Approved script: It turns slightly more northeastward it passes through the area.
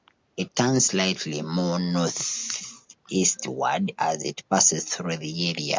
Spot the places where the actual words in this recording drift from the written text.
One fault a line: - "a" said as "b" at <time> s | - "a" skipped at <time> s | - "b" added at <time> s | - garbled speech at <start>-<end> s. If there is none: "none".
- "as" added at 4.0 s